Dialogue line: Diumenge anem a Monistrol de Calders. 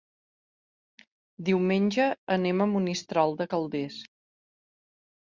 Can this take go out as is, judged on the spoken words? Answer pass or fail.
pass